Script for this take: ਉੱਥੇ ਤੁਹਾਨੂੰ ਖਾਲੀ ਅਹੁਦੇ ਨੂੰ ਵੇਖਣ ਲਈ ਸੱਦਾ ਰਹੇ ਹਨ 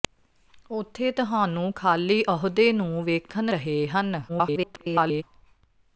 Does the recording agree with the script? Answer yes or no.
no